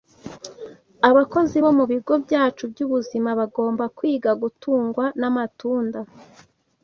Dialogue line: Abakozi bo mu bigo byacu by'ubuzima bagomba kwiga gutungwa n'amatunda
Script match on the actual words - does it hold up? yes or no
yes